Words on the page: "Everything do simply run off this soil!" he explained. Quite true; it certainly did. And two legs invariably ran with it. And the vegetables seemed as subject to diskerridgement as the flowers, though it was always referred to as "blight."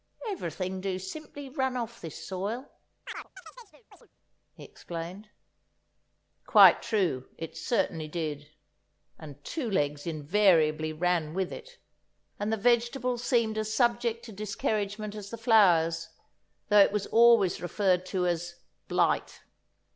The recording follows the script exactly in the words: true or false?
true